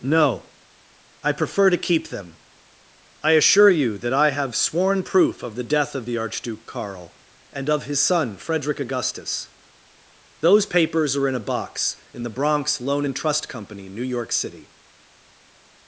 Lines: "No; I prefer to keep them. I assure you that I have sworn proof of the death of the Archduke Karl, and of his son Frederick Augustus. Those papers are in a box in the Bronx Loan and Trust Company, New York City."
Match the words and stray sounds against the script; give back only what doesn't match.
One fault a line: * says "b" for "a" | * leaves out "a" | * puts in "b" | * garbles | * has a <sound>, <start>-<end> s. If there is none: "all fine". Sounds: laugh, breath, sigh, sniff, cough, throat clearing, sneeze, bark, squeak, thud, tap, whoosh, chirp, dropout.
all fine